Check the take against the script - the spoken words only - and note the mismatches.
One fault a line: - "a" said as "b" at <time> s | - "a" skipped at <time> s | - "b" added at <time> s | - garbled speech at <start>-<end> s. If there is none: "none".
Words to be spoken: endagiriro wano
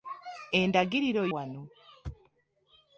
none